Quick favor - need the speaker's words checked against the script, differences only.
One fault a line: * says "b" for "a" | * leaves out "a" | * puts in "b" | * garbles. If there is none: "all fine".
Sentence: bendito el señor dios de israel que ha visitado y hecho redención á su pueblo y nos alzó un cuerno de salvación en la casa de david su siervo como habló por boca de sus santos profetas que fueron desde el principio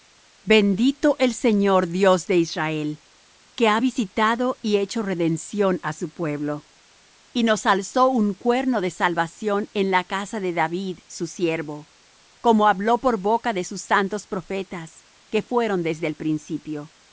all fine